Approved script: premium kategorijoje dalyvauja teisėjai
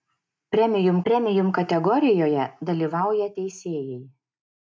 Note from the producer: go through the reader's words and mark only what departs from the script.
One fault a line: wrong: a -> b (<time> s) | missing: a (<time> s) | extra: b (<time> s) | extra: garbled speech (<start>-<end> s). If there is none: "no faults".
extra: premium (1.1 s)